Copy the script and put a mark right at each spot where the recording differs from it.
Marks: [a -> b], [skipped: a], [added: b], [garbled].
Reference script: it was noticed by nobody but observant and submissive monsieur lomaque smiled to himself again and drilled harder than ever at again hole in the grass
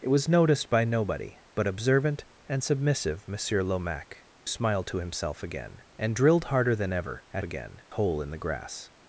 it was noticed by nobody but observant and submissive monsieur lomaque smiled to himself again and drilled harder than ever at again hole in the grass